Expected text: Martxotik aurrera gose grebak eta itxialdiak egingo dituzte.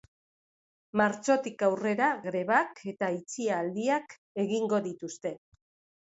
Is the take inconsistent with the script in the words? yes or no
yes